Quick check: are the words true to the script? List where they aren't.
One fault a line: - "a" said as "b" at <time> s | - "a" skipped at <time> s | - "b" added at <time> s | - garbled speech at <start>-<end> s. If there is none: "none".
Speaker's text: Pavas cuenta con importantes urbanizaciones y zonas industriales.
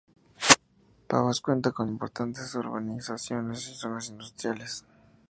none